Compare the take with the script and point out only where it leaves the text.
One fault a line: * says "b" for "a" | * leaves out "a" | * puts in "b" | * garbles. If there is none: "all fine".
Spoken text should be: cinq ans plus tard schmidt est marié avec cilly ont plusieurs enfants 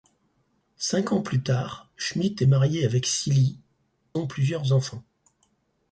all fine